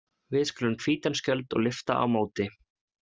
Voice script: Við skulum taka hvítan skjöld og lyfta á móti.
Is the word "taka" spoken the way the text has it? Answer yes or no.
no